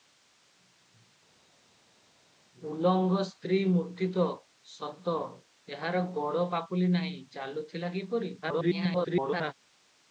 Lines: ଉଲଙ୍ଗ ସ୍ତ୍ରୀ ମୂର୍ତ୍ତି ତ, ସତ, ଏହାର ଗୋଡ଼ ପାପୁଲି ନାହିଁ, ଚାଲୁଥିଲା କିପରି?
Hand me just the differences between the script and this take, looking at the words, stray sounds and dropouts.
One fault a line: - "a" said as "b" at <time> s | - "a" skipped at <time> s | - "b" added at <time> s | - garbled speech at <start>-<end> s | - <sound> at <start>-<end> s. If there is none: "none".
- garbled speech at 8.4-9.5 s